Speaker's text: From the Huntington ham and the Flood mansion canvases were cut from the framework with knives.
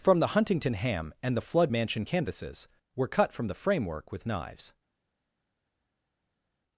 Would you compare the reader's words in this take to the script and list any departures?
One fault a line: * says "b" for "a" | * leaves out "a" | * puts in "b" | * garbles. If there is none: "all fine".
all fine